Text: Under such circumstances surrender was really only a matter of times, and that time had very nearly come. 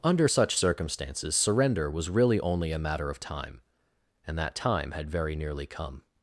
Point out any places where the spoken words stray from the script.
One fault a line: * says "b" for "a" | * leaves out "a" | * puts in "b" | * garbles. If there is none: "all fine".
* says "time" for "times"